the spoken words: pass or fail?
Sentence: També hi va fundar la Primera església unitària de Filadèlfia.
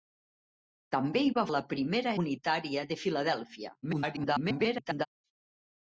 fail